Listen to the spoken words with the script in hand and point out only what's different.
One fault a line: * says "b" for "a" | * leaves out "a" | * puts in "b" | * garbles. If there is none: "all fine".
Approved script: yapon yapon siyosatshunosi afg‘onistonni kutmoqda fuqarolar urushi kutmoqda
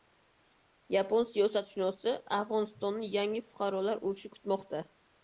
* leaves out "yapon"
* says "yangi" for "kutmoqda"